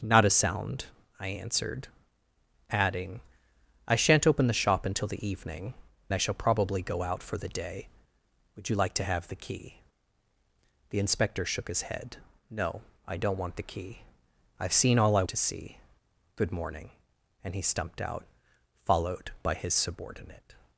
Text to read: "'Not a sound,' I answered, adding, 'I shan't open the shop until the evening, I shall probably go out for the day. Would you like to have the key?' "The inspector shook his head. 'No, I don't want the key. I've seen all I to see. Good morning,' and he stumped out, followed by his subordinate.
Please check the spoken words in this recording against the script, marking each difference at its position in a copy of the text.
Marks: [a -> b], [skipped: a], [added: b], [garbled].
"'Not a sound,' I answered, adding, 'I shan't open the shop until the evening, I shall probably go out for the day. Would you like to have the key?' "The inspector shook his head. 'No, I don't want the key. I've seen all I to see. Good morning,' and he stumped out, followed by his subordinate.